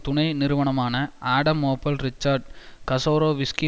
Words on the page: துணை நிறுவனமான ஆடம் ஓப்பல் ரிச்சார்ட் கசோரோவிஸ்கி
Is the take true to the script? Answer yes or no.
yes